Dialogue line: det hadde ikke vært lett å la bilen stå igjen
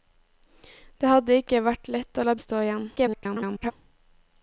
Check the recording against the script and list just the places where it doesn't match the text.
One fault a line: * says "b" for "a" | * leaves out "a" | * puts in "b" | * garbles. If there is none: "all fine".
* leaves out "bilen"
* garbles